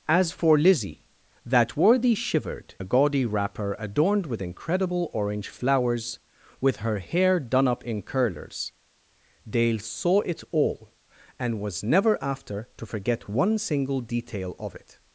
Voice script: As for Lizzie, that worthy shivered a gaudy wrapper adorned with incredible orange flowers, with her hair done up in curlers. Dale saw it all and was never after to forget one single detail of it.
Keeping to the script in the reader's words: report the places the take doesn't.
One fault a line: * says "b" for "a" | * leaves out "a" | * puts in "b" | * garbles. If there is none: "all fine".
all fine